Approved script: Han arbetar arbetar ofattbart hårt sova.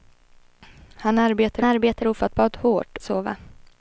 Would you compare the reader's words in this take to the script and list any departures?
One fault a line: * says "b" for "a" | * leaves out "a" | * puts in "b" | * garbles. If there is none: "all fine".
all fine